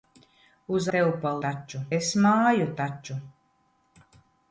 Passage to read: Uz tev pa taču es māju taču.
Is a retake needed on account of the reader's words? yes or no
no